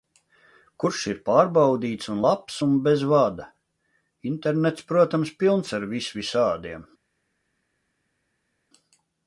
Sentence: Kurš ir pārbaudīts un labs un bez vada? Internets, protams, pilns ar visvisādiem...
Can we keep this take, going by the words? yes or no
yes